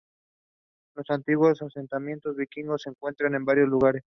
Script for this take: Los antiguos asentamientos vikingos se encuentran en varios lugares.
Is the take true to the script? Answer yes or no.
yes